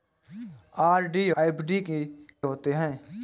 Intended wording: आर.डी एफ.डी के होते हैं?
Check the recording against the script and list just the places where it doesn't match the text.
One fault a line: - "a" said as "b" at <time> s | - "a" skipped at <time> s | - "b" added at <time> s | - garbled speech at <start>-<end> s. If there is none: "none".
none